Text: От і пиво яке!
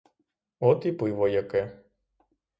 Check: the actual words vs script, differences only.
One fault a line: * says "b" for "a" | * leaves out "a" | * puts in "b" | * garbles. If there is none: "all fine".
all fine